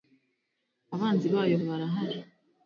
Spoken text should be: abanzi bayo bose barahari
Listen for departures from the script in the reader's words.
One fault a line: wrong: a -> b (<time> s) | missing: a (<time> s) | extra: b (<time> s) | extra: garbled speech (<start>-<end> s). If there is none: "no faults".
missing: bose (1.6 s)